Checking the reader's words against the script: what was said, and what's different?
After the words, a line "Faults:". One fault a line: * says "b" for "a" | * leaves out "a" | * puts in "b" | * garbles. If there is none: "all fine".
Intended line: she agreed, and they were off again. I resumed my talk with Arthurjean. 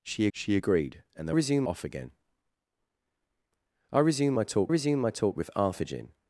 she she agreed, and they resumed off again. I resumed my talk resumed my talk with Arthurjean.
Faults:
* puts in "she"
* says "resumed" for "were"
* puts in "resumed my talk"